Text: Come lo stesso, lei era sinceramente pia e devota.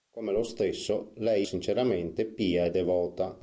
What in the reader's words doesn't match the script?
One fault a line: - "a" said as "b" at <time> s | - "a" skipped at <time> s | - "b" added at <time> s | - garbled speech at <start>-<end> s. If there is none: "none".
- "era" skipped at 1.5 s